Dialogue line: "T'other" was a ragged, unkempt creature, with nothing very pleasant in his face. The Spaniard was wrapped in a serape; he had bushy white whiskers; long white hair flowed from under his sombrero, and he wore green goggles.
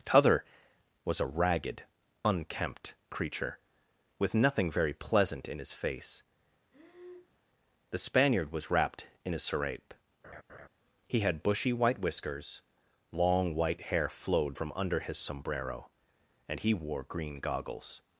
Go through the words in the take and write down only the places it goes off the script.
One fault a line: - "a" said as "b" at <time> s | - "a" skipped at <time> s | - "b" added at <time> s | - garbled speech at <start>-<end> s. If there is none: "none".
none